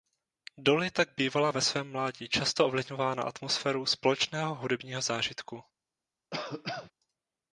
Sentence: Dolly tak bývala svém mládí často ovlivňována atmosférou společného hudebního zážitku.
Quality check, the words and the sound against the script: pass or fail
fail